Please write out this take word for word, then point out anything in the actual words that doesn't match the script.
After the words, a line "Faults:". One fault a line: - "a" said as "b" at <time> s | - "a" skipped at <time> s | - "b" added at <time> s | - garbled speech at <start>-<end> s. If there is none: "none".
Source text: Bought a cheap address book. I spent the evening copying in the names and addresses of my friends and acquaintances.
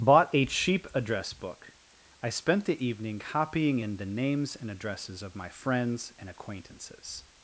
Bought a cheap address book. I spent the evening copying in the names and addresses of my friends and acquaintances.
Faults:
none